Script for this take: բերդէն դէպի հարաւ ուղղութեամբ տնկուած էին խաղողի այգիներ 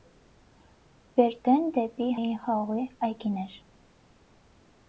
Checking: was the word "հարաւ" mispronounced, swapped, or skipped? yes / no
yes